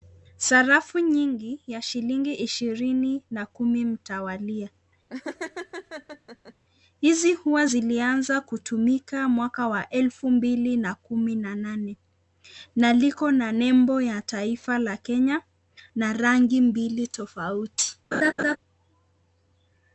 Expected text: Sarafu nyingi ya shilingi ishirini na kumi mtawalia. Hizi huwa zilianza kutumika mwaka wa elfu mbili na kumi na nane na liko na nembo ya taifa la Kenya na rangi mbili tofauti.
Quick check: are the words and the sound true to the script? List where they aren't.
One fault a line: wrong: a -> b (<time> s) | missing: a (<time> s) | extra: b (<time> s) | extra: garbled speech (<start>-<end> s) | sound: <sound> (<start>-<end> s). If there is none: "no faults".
sound: laugh (5.1-6.5 s)
sound: laugh (18.1-18.6 s)